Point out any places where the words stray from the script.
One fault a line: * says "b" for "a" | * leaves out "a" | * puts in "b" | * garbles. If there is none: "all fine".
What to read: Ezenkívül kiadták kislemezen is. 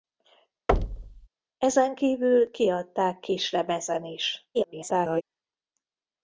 * garbles